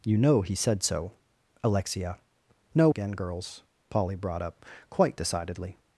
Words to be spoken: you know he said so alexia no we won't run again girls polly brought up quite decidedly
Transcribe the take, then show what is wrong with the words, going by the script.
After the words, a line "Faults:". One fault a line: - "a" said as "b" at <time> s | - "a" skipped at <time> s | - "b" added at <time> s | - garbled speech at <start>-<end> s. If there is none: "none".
you know he said so alexia no again girls polly brought up quite decidedly
Faults:
- "we won't run" skipped at 2.9 s